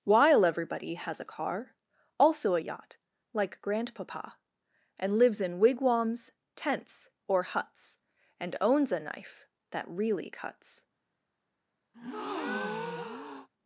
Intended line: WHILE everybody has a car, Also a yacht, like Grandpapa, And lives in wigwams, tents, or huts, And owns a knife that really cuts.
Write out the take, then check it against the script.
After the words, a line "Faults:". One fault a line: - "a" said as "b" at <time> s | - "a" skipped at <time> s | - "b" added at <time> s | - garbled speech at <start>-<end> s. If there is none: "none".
WHILE everybody has a car, Also a yacht, like Grandpapa, And lives in wigwams, tents, or huts, And owns a knife that really cuts.
Faults:
none